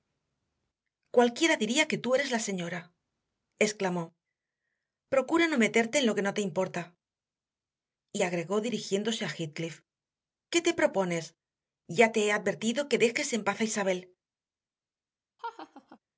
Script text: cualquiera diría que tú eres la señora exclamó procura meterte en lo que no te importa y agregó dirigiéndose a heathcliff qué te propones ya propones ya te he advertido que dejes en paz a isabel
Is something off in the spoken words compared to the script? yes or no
yes